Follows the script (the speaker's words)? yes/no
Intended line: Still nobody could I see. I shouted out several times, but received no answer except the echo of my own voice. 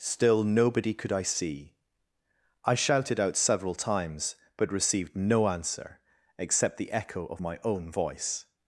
yes